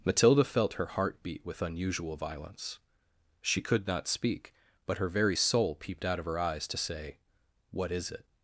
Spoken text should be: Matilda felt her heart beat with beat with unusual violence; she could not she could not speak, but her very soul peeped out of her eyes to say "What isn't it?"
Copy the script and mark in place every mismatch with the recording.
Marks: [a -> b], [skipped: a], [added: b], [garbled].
Matilda felt her heart beat with [skipped: beat with] unusual violence; she could not [skipped: she could not] speak, but her very soul peeped out of her eyes to say "What [isn't -> is] it?"